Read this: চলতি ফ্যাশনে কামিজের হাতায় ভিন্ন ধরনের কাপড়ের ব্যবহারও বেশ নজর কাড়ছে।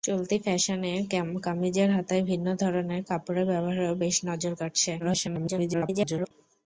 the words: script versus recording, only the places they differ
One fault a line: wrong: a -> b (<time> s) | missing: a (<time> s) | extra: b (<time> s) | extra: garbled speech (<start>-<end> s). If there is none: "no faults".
extra: garbled speech (5.0-6.3 s)